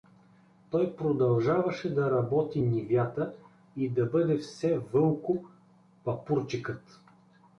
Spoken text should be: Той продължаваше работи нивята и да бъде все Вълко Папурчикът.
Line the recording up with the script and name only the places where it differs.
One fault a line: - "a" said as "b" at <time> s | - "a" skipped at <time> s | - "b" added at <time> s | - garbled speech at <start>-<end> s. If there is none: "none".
- "да" added at 1.9 s